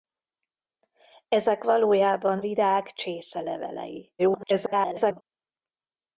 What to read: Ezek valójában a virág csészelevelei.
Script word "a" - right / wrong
wrong